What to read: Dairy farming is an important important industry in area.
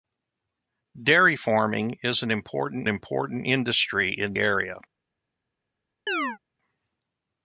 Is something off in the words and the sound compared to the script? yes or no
yes